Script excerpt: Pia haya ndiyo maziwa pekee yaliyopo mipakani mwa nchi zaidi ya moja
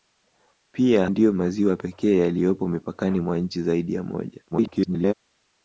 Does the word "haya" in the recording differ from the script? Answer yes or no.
yes